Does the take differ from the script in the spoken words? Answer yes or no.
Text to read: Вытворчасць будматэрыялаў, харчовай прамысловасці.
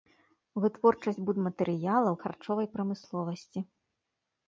no